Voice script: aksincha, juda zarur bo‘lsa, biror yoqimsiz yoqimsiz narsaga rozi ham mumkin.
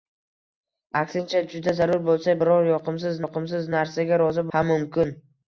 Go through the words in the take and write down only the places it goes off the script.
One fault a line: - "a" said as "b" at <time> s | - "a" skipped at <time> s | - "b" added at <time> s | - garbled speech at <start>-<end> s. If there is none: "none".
none